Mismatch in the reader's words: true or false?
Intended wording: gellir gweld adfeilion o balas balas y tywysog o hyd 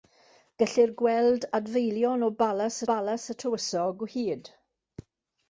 false